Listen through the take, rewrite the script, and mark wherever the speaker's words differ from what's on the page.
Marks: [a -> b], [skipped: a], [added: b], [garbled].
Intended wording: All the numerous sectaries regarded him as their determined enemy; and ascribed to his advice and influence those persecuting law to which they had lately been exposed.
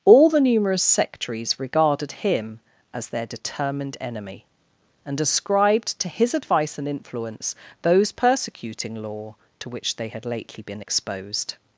All the numerous sectaries regarded him as their determined enemy; and ascribed to his advice and influence those persecuting law to which they had lately been exposed.